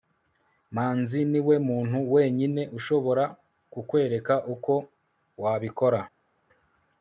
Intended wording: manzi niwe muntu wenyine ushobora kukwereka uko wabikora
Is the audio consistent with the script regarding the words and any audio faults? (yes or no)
yes